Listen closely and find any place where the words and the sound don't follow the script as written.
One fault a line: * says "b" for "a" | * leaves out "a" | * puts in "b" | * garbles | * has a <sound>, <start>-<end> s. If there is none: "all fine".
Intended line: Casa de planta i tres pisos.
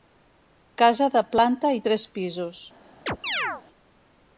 * has a chirp, 3.1-3.6 s